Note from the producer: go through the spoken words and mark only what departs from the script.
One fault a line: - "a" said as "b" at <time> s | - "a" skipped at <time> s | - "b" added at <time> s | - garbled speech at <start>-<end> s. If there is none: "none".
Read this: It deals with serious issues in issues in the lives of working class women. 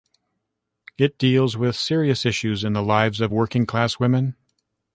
- "issues in" skipped at 2.7 s